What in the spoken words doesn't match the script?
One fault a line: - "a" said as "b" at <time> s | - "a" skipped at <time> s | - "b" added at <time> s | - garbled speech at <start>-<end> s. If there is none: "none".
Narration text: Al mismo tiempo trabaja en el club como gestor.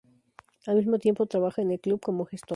none